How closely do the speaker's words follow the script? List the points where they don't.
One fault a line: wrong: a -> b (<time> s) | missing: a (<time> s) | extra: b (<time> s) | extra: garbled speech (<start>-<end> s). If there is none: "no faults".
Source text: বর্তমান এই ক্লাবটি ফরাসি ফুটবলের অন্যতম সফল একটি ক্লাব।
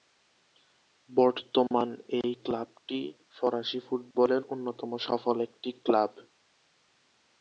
no faults